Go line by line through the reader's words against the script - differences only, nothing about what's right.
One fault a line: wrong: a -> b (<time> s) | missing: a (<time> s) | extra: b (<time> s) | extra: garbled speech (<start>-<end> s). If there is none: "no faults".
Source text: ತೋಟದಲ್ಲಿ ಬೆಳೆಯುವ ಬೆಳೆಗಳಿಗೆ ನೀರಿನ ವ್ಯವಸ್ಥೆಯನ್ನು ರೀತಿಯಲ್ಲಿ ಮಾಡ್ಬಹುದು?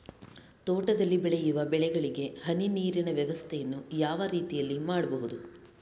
extra: ಹನಿ (2.5 s)
extra: ಯಾವ (4.0 s)